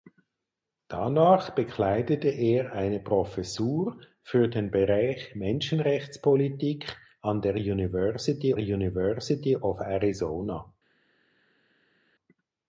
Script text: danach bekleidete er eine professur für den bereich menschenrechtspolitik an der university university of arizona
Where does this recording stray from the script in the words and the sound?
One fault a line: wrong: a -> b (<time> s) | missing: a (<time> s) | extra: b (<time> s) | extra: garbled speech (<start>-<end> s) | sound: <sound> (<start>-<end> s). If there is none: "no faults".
no faults